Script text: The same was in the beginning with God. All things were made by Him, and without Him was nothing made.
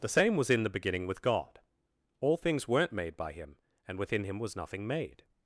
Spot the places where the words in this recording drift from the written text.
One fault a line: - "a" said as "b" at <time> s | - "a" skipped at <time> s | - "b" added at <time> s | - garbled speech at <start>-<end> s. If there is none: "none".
- "were" said as "weren't" at 2.7 s
- "without" said as "within" at 4.0 s